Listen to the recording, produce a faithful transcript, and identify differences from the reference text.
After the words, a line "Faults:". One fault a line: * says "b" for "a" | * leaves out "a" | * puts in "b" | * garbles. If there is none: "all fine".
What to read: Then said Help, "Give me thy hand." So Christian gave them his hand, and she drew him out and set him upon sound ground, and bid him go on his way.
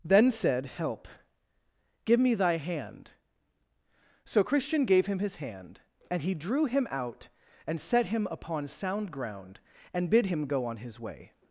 Then said Help, "Give me thy hand." So Christian gave him his hand, and he drew him out and set him upon sound ground, and bid him go on his way.
Faults:
* says "him" for "them"
* says "he" for "she"